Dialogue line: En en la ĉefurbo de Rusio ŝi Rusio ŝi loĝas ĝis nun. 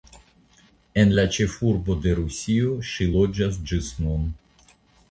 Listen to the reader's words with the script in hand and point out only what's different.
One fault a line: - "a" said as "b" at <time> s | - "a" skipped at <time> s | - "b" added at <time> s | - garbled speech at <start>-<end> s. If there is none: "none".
- "en" skipped at 1.1 s
- "Rusio ŝi" skipped at 3.1 s